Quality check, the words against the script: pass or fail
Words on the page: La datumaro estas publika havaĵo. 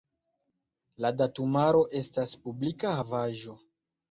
pass